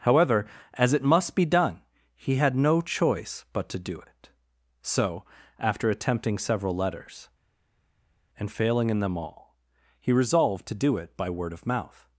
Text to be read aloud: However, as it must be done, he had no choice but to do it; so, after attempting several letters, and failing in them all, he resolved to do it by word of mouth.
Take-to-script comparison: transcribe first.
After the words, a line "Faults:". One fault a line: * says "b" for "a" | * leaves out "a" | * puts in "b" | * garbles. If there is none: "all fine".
However, as it must be done, he had no choice but to do it; so, after attempting several letters, and failing in them all, he resolved to do it by word of mouth.
Faults:
all fine